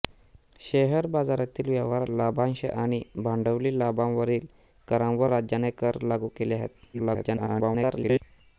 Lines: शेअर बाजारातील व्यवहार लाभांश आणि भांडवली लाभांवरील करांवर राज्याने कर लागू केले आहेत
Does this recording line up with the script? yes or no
no